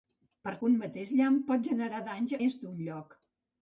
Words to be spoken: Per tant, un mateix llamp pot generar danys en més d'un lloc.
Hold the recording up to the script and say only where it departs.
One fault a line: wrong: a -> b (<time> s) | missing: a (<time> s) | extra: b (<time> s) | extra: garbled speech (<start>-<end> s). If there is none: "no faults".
missing: tant (0.5 s)
missing: en (2.4 s)